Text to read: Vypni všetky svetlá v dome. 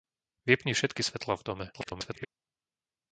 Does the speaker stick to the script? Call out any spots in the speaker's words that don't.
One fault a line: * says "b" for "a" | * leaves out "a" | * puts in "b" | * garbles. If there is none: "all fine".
* garbles